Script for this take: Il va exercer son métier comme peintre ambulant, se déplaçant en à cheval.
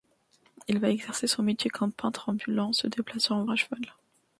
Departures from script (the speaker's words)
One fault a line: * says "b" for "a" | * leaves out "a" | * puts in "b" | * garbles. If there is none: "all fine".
all fine